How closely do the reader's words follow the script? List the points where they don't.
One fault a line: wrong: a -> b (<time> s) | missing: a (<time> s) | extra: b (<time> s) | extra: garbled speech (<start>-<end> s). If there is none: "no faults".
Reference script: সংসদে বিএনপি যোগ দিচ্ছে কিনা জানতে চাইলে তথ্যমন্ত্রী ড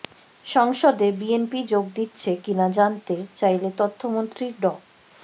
no faults